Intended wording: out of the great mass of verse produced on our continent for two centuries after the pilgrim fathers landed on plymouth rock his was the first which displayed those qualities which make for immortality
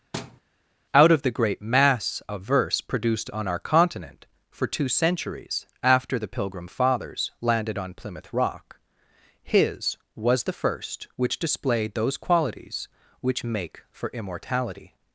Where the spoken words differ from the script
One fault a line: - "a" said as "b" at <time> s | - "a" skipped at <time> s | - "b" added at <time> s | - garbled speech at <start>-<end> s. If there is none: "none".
none